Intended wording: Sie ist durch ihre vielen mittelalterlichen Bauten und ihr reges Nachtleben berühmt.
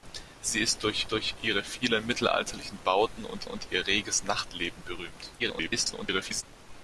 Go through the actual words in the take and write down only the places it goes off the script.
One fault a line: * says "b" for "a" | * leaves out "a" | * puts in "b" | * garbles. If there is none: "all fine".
* puts in "durch"
* puts in "und"
* garbles